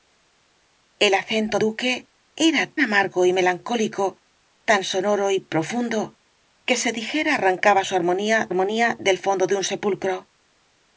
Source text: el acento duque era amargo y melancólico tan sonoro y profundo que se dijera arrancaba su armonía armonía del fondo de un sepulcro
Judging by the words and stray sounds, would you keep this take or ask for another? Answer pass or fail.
pass